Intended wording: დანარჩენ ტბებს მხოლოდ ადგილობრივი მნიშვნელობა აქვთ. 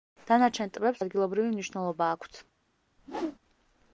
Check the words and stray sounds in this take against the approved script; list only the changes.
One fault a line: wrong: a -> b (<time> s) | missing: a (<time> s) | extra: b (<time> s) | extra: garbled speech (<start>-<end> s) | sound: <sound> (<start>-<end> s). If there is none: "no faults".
missing: მხოლოდ (1.0 s)
sound: whoosh (3.0-3.4 s)